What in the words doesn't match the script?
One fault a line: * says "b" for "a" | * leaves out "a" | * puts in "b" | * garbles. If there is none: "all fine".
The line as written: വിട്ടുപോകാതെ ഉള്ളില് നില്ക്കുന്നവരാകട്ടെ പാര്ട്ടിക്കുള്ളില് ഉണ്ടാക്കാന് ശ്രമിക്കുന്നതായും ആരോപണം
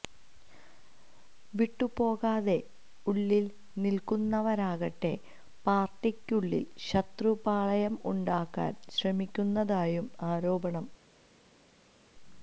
* puts in "ശത്രുപാളയം"